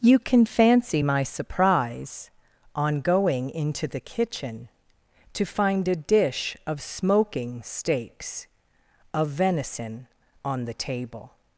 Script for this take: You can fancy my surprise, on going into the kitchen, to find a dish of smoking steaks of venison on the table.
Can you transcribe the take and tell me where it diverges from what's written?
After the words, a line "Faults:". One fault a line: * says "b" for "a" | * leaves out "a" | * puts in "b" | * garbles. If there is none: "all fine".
You can fancy my surprise, on going into the kitchen, to find a dish of smoking steaks of venison on the table.
Faults:
all fine